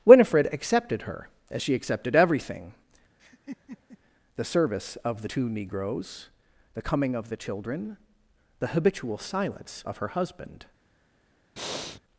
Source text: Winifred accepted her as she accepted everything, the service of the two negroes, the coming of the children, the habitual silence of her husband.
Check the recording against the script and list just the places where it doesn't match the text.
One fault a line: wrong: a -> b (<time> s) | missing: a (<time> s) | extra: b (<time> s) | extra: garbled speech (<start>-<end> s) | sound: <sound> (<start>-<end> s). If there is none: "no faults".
sound: laugh (3.2-4.0 s)
sound: breath (11.6-12.0 s)